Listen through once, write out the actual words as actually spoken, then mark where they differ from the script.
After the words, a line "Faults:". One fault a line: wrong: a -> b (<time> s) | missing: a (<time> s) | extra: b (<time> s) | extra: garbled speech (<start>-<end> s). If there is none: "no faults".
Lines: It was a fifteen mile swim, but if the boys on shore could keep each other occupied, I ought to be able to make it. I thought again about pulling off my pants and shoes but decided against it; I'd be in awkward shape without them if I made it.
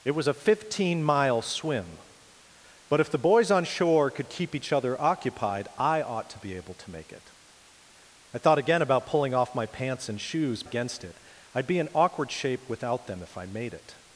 It was a fifteen mile swim, but if the boys on shore could keep each other occupied, I ought to be able to make it. I thought again about pulling off my pants and shoes against it; I'd be in awkward shape without them if I made it.
Faults:
missing: but decided (10.6 s)